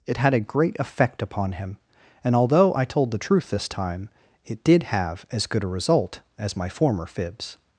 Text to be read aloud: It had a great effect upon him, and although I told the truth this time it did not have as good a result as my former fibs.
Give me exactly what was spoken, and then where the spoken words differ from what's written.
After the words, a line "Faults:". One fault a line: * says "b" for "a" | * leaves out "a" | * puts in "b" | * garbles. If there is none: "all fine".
It had a great effect upon him, and although I told the truth this time it did have as good a result as my former fibs.
Faults:
* leaves out "not"